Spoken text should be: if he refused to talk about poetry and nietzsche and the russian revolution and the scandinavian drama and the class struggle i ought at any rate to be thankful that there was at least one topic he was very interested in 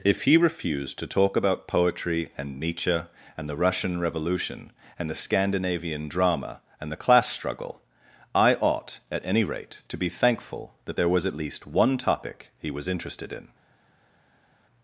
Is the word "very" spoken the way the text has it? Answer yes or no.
no